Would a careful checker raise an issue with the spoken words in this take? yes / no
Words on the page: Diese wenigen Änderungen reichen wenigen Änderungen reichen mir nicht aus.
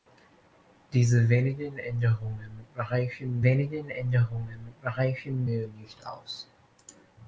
no